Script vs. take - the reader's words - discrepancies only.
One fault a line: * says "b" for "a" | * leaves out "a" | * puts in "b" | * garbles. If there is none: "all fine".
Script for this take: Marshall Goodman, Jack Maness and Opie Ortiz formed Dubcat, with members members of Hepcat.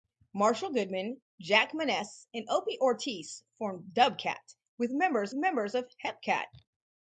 all fine